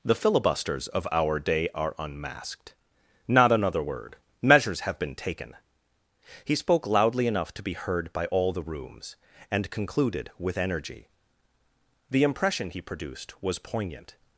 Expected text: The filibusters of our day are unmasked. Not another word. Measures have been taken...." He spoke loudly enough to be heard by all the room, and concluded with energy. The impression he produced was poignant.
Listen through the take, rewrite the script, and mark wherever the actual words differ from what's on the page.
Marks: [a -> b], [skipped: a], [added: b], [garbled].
The filibusters of our day are unmasked. Not another word. Measures have been taken...." He spoke loudly enough to be heard by all the [room, -> rooms] and concluded with energy. The impression he produced was poignant.